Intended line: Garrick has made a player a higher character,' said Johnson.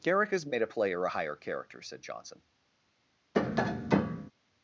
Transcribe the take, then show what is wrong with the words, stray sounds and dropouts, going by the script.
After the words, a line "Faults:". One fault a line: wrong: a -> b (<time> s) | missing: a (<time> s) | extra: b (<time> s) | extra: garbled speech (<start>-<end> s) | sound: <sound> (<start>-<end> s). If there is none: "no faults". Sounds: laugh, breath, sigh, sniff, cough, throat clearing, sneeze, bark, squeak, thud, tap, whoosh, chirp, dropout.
Garrick has made a player a higher character,' said Johnson.
Faults:
sound: tap (3.3-4.3 s)